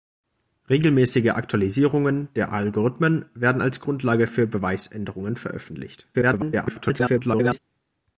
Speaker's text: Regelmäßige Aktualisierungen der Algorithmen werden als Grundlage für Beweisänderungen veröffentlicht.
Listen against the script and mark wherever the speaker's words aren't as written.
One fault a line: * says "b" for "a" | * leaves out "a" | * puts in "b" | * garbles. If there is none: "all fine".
* garbles